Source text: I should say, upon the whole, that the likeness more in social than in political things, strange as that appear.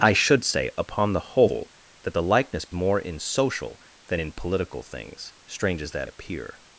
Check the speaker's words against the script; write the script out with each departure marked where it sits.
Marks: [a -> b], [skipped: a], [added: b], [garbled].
I should say, upon the whole, that the likeness more in social than in political things, strange as that appear.